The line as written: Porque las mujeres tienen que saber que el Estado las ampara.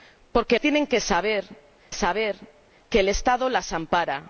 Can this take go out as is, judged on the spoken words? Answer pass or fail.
fail